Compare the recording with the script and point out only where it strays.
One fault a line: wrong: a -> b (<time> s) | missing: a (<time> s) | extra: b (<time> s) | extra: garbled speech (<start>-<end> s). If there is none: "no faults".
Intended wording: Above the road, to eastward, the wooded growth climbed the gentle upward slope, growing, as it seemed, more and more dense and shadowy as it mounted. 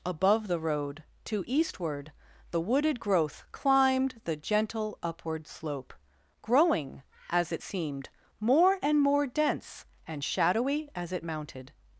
no faults